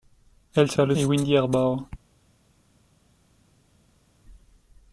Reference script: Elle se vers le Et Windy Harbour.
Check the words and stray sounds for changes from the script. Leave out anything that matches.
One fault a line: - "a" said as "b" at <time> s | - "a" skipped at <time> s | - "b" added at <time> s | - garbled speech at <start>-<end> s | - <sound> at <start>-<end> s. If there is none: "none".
none